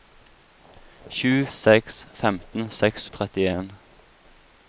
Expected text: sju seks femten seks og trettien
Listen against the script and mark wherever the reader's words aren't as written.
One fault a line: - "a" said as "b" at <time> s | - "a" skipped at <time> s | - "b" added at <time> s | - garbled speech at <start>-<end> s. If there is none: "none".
none